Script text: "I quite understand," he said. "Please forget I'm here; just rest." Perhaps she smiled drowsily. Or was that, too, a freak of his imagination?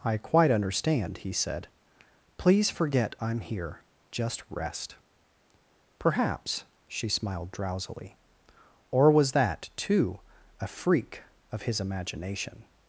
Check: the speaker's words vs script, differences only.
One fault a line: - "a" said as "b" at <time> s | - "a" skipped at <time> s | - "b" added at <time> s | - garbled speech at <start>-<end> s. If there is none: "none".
none